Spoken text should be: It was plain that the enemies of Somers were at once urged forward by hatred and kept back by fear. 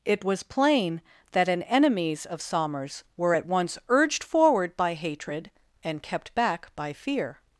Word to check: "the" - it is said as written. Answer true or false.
false